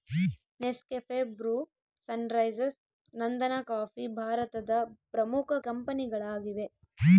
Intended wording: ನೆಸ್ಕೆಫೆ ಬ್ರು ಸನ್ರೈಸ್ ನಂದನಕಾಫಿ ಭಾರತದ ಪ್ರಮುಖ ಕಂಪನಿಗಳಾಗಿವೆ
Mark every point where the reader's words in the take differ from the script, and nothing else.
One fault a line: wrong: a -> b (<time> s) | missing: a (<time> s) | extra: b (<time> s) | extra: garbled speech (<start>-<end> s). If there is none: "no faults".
no faults